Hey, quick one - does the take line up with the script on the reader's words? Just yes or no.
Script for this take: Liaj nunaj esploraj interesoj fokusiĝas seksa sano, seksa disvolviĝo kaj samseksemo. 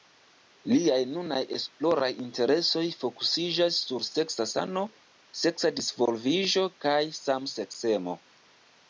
no